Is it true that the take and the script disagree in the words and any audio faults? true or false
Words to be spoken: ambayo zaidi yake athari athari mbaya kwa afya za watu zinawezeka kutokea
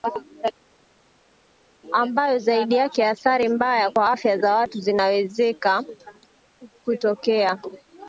true